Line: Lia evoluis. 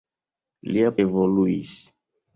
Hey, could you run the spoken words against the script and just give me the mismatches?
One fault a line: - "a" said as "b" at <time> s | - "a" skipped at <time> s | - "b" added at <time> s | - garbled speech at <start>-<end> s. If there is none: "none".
none